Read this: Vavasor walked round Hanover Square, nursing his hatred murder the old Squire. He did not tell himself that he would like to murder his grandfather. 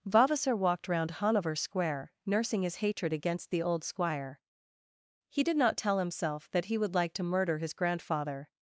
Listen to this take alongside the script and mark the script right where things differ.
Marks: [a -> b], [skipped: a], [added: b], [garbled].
Vavasor walked round Hanover Square, nursing his hatred [murder -> against] the old Squire. He did not tell himself that he would like to murder his grandfather.